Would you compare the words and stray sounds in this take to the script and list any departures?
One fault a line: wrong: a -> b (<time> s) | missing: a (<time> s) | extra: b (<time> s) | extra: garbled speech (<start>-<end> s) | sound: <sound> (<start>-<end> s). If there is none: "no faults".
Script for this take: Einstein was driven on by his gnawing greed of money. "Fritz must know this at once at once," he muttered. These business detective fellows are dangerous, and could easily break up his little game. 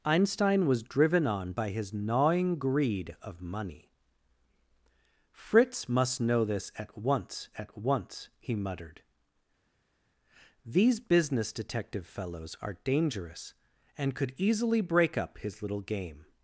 no faults